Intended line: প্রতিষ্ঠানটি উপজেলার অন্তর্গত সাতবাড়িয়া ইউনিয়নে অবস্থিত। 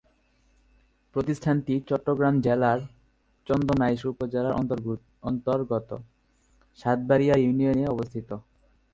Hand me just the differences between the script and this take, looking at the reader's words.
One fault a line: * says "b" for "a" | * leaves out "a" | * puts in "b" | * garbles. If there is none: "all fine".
* puts in "চট্টগ্রাম জেলার চন্দনাইশ"